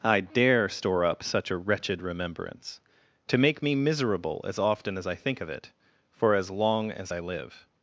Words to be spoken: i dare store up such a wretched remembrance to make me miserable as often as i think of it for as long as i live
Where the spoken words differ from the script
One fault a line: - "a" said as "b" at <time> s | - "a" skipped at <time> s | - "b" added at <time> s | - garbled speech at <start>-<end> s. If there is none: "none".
none